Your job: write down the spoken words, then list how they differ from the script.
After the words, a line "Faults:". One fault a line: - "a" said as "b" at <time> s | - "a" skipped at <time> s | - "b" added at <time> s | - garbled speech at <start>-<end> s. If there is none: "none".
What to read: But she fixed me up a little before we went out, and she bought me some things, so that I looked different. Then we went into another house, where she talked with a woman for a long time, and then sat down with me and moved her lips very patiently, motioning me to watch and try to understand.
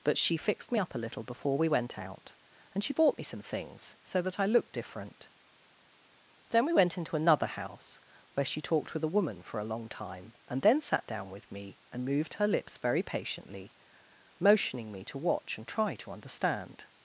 But she fixed me up a little before we went out, and she bought me some things, so that I looked different. Then we went into another house, where she talked with a woman for a long time, and then sat down with me and moved her lips very patiently, motioning me to watch and try to understand.
Faults:
none